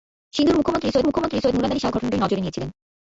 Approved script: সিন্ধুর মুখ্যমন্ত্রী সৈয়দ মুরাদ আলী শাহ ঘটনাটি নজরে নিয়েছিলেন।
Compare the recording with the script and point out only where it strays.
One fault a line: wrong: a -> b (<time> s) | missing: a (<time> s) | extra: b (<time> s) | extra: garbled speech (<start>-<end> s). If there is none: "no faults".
extra: মুখ্যমন্ত্রী সৈয়দ (1.1 s)